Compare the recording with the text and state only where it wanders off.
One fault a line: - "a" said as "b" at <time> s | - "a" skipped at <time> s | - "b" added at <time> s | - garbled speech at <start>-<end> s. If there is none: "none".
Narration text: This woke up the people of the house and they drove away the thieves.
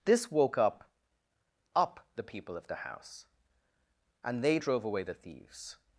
- "up" added at 1.8 s